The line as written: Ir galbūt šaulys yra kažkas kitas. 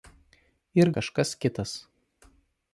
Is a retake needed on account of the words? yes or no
yes